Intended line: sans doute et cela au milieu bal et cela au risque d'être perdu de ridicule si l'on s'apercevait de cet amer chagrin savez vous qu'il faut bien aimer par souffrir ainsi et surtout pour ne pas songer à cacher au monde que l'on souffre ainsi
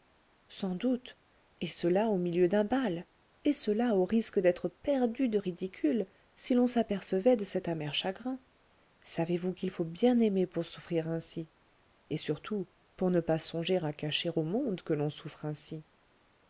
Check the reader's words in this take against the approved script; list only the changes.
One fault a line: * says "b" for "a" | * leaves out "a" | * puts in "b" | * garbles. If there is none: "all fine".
* puts in "d'un"
* says "pour" for "par"